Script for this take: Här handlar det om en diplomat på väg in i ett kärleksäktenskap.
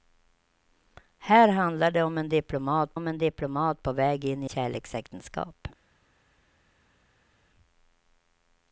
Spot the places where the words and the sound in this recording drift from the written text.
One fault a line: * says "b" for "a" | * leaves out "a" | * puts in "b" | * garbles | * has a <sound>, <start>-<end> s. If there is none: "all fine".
* puts in "om en diplomat"
* leaves out "ett"